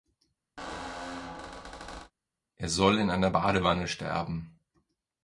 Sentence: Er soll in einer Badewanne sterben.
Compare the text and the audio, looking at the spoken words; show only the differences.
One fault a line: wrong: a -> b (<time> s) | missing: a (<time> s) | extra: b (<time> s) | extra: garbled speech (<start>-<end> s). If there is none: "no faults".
no faults